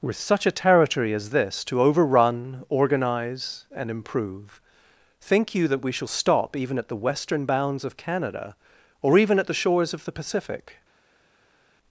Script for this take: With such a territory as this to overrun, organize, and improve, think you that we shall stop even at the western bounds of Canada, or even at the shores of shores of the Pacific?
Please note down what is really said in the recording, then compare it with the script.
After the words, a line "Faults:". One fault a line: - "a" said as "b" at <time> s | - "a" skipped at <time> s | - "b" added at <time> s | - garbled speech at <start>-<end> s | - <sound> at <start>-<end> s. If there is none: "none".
With such a territory as this to overrun, organize, and improve, think you that we shall stop even at the western bounds of Canada, or even at the shores of the Pacific?
Faults:
- "shores of" skipped at 10.0 s